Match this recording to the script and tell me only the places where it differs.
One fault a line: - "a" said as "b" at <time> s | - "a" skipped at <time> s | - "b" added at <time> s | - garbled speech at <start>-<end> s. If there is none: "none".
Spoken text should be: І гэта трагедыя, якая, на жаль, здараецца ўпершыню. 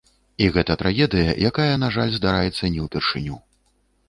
- "не" added at 2.8 s